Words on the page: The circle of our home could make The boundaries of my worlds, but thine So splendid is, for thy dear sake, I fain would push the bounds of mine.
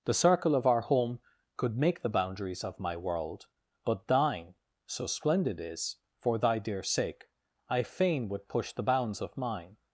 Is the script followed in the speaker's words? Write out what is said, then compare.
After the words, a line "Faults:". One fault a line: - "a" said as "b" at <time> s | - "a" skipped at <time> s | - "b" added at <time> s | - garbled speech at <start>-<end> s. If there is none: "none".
The circle of our home could make The boundaries of my world, but thine So splendid is, for thy dear sake, I fain would push the bounds of mine.
Faults:
- "worlds" said as "world" at 3.0 s